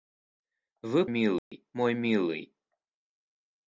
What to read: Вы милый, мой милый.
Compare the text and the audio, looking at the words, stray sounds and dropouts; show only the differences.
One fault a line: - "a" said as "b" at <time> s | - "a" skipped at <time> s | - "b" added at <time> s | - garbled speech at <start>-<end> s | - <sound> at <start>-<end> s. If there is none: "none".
- dropout at 1.4-1.5 s